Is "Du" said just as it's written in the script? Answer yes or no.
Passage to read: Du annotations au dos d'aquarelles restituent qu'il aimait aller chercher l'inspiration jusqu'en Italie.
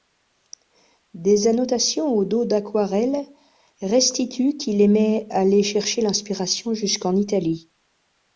no